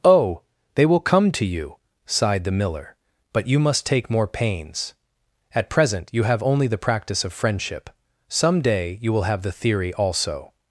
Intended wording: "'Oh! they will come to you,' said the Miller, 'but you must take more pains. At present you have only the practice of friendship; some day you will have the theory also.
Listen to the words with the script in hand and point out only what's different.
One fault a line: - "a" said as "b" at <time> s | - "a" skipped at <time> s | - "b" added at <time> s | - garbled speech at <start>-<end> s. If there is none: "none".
- "said" said as "sighed" at 2.0 s